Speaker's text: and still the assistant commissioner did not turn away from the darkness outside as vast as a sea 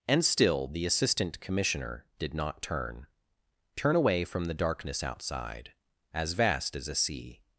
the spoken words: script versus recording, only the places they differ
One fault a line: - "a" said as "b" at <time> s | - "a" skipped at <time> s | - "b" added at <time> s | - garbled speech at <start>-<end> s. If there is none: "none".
- "turn" added at 3.8 s